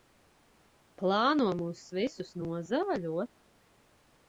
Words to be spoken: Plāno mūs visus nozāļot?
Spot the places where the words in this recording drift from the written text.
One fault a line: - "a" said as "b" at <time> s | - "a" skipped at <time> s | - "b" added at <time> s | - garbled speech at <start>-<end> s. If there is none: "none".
none